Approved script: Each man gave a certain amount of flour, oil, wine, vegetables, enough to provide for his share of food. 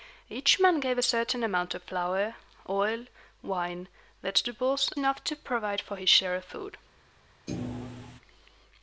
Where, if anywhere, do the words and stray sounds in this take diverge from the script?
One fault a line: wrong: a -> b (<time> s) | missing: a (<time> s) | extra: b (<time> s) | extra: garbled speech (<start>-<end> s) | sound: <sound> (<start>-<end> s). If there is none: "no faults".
sound: thud (7.5-8.2 s)